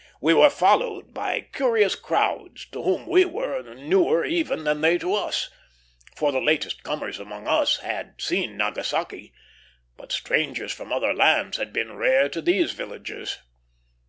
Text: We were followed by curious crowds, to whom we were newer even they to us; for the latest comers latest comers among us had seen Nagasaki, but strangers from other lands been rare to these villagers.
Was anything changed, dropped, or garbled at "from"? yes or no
no